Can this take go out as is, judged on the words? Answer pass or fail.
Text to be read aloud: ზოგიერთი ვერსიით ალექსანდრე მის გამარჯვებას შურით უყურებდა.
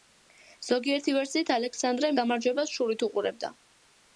fail